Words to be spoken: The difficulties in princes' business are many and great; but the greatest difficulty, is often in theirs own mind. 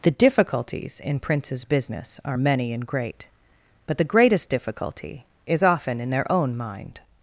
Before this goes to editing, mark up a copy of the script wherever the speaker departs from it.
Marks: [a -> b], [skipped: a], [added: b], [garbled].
The difficulties in princes' business are many and great; but the greatest difficulty, is often in [theirs -> their] own mind.